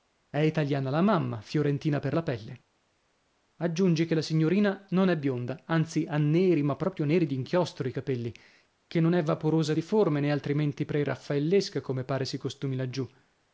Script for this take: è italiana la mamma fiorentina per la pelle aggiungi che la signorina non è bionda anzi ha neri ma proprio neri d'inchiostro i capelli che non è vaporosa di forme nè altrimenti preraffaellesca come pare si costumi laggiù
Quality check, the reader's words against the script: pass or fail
pass